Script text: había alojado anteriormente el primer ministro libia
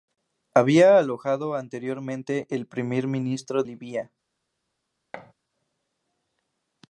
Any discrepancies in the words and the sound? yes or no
yes